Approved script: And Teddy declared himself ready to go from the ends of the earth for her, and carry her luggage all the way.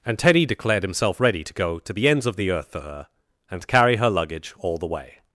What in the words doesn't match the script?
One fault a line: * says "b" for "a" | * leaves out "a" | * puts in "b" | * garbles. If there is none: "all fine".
* says "to" for "from"